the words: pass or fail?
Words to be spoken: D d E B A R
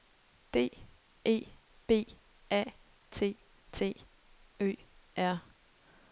fail